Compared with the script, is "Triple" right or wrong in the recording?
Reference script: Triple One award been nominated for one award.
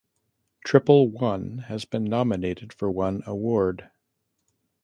right